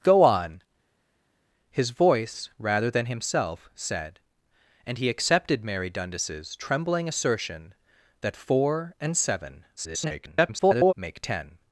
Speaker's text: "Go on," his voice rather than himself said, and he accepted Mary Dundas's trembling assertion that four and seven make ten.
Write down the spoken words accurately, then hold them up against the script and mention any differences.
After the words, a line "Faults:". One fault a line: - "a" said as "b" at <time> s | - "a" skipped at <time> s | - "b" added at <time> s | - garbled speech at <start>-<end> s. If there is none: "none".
"Go on," his voice rather than himself said, and he accepted Mary Dundas's trembling assertion that four and seven [garbled] make ten.
Faults:
- garbled speech at 9.8-10.9 s